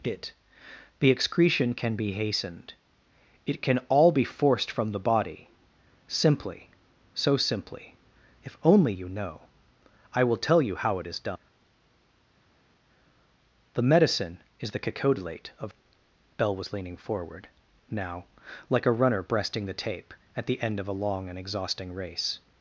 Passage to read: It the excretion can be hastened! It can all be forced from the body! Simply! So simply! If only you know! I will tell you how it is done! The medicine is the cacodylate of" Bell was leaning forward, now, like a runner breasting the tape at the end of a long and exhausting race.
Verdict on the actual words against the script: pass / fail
pass